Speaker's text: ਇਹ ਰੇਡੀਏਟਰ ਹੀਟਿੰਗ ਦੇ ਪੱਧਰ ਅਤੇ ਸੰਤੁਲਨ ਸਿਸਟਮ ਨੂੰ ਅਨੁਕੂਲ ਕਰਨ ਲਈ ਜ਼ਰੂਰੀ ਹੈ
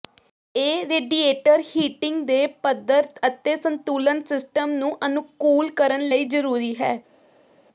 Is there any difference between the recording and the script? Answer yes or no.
no